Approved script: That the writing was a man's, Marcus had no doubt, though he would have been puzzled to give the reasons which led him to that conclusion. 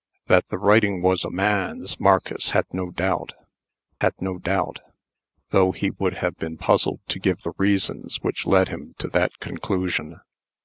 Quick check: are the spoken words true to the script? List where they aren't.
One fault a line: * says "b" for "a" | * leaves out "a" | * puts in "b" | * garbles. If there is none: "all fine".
* puts in "had no doubt"